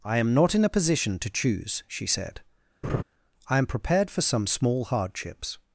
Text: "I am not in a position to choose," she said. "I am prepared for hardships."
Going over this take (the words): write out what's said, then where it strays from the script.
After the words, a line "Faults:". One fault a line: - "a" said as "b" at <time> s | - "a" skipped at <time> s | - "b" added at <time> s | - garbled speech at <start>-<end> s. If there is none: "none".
"I am not in a position to choose," she said. "I am prepared for some small hardships."
Faults:
- "some small" added at 4.2 s